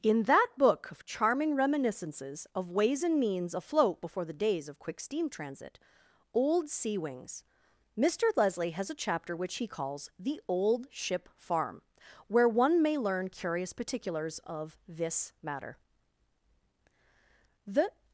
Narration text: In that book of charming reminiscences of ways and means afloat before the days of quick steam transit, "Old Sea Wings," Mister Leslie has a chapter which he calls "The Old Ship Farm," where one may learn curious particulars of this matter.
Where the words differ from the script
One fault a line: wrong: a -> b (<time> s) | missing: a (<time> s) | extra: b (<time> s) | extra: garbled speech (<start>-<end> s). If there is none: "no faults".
extra: The (17.7 s)